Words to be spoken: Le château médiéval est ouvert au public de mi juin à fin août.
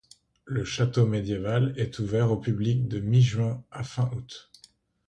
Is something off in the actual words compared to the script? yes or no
no